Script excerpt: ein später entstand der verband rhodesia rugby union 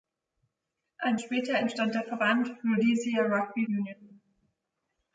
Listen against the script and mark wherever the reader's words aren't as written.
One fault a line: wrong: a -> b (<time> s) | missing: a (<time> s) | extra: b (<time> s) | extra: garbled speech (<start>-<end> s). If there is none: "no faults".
no faults